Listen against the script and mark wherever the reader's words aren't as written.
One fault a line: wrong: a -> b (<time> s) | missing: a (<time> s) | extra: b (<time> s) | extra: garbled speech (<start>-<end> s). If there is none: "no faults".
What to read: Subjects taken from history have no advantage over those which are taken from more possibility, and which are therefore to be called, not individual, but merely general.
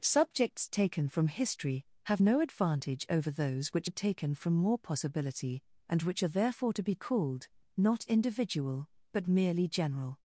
no faults